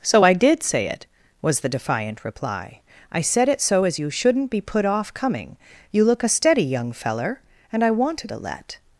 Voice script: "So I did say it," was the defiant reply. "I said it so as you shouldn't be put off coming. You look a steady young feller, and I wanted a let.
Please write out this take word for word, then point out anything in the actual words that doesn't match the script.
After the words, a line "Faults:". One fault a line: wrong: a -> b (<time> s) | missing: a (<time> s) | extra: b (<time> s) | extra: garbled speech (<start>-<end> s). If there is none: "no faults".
"So I did say it," was the defiant reply. "I said it so as you shouldn't be put off coming. You look a steady young feller, and I wanted a let.
Faults:
no faults